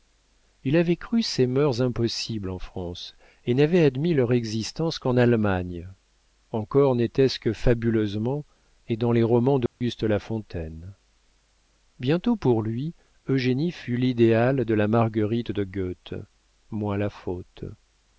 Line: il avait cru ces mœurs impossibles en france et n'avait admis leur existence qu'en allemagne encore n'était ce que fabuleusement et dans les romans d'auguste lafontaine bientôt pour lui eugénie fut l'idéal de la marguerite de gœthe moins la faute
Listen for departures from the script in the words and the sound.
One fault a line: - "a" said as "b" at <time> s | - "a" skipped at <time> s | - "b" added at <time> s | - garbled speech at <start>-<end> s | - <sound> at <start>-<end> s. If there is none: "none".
- dropout at 9.7-9.8 s